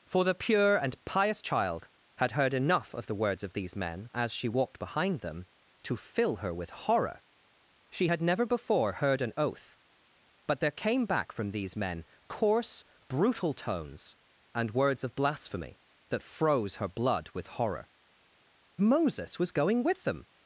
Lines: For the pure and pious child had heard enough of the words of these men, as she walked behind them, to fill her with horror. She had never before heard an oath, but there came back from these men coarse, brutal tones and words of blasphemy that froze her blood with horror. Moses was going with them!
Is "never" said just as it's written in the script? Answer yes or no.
yes